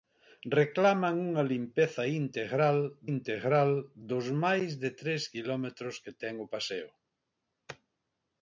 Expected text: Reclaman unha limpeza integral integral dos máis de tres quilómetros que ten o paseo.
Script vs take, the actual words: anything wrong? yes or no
no